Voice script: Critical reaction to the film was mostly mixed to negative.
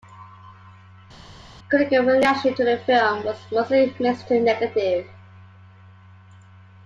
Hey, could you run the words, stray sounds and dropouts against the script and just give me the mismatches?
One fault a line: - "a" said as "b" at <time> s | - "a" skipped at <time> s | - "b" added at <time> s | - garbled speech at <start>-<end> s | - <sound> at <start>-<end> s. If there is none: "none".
none